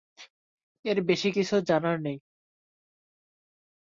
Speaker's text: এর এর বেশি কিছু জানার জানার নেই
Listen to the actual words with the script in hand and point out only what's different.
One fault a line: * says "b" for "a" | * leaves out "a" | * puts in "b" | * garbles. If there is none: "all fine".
* leaves out "এর"
* leaves out "জানার"